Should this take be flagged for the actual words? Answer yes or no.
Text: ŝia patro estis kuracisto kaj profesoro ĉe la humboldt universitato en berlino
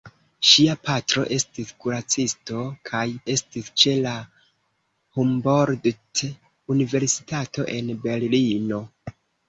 yes